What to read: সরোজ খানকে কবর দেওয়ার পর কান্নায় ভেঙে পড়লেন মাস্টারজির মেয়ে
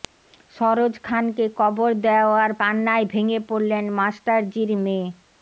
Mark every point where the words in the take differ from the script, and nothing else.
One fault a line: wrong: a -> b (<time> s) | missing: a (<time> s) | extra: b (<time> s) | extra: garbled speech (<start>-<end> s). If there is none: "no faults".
missing: পর (2.5 s)